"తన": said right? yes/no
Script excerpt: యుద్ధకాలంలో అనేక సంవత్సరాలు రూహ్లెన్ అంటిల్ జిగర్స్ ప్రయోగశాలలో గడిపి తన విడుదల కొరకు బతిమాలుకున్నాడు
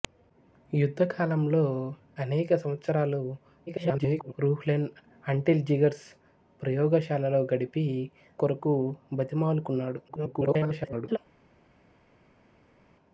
no